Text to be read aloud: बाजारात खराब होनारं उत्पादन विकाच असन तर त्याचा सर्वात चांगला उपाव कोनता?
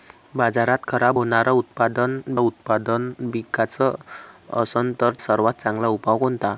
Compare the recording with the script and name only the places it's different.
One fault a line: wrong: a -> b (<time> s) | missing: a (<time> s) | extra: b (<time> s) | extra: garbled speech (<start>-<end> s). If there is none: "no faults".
extra: उत्पादन (2.4 s)
missing: त्याचा (5.1 s)